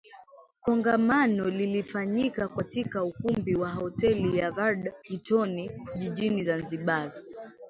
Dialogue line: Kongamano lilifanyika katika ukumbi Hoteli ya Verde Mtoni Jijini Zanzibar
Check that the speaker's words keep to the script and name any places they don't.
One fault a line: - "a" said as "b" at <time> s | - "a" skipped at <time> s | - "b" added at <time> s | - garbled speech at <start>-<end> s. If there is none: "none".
- "wa" added at 3.5 s